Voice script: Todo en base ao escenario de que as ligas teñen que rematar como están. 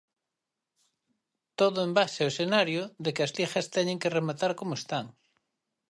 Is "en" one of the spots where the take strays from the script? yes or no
no